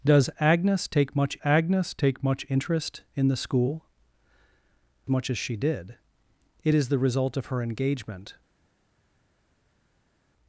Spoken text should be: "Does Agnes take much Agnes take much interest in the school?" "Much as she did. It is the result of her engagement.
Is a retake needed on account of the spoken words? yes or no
no